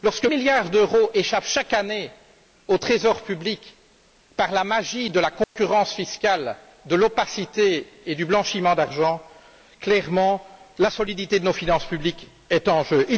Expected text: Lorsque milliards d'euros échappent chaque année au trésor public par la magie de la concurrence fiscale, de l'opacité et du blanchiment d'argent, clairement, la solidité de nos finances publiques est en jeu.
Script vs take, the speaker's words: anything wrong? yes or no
no